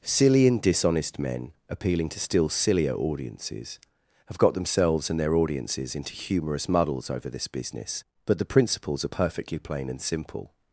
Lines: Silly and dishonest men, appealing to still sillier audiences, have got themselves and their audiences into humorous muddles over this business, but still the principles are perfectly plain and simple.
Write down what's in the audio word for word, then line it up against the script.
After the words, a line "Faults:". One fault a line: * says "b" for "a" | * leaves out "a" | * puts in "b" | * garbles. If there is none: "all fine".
Silly and dishonest men, appealing to still sillier audiences, have got themselves and their audiences into humorous muddles over this business, but the principles are perfectly plain and simple.
Faults:
* leaves out "still"